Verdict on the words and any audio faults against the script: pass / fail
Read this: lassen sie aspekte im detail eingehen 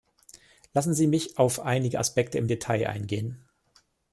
fail